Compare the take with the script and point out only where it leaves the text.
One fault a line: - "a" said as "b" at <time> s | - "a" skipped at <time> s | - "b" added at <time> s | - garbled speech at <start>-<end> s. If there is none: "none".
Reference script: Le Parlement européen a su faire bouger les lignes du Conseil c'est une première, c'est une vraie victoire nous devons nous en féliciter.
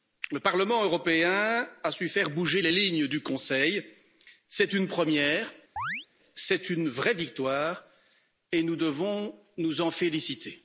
- "et" added at 8.5 s